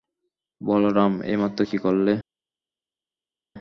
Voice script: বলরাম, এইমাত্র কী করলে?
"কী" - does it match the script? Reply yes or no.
yes